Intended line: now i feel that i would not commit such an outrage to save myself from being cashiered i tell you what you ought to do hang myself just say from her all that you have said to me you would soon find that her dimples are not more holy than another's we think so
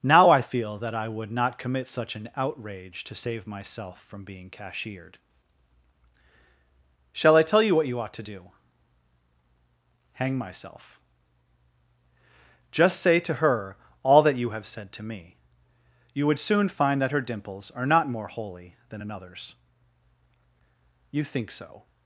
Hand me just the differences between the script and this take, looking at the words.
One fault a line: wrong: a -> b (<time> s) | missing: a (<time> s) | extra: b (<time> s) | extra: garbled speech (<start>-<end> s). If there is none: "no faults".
extra: shall (7.1 s)
wrong: from -> to (13.2 s)
wrong: we -> you (21.1 s)